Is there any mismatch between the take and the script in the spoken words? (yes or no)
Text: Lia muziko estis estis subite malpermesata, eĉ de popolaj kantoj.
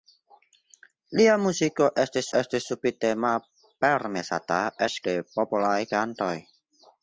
no